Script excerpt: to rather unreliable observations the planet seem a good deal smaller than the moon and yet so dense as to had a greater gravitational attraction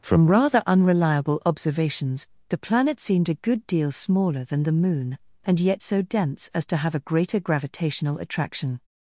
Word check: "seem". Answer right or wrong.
wrong